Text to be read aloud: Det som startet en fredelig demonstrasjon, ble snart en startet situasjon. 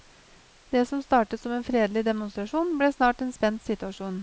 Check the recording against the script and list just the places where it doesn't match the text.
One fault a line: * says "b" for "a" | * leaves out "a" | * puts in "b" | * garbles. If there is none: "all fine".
* puts in "som"
* says "spent" for "startet"